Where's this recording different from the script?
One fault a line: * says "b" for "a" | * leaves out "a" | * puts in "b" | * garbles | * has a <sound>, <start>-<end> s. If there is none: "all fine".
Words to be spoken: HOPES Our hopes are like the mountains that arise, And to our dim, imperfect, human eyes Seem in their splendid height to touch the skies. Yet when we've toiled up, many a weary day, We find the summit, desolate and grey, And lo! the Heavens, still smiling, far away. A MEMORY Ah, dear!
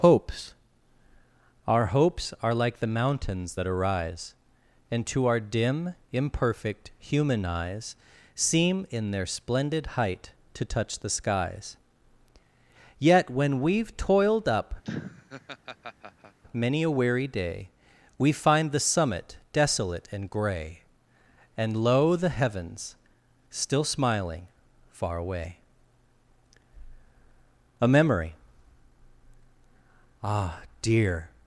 * has a laugh, 14.8-16.4 s